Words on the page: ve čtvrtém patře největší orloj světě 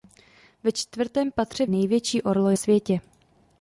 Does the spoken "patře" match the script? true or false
true